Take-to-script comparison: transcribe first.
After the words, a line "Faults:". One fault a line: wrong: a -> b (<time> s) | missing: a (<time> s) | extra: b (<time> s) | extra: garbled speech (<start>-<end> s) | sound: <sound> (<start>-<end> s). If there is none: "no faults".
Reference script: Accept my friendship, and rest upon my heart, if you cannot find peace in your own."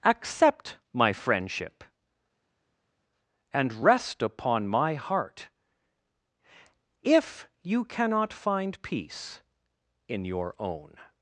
Accept my friendship, and rest upon my heart, if you cannot find peace in your own."
Faults:
no faults